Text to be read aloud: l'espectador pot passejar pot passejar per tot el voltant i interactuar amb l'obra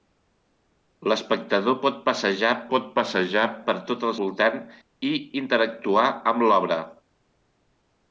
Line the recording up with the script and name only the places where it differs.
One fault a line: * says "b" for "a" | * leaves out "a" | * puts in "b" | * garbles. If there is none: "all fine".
all fine